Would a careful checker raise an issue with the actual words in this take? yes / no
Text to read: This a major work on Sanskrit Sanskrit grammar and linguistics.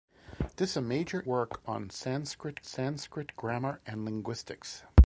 no